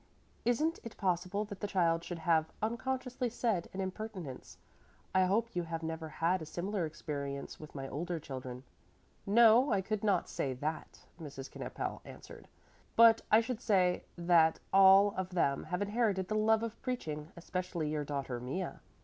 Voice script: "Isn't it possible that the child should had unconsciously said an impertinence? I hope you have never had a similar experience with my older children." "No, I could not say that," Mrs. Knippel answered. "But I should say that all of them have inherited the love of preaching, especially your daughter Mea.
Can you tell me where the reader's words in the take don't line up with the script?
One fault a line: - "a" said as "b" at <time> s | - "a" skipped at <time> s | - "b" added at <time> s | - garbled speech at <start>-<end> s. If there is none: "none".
- "had" said as "have" at 2.2 s